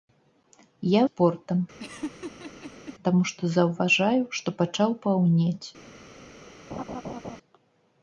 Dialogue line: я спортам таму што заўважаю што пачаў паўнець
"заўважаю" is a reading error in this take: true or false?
false